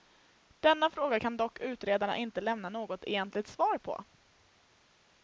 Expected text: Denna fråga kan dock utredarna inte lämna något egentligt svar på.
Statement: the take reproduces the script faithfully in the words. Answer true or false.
true